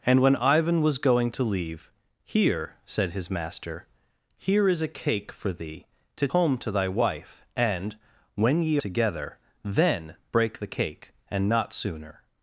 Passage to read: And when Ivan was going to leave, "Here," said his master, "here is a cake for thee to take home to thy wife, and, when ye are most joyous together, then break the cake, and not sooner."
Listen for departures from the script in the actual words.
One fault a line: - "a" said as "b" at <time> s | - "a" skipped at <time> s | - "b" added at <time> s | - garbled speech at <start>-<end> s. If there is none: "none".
- "take" skipped at 6.3 s
- "are most joyous" skipped at 8.8 s